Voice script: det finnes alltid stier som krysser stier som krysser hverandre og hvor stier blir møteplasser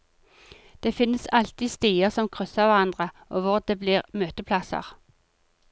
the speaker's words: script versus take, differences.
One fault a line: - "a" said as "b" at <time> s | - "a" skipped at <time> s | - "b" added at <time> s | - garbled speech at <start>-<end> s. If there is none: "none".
- "stier som krysser" skipped at 2.7 s
- "stier" said as "det" at 3.6 s